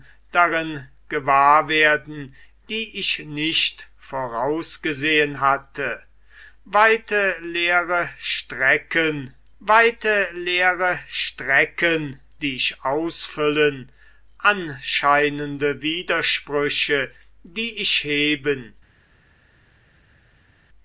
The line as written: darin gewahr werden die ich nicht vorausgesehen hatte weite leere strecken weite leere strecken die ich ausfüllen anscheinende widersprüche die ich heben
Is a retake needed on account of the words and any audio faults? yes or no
no